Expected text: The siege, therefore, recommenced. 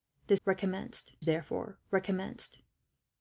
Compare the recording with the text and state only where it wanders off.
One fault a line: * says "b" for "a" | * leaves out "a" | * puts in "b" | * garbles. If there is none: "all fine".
* says "recommenced" for "siege"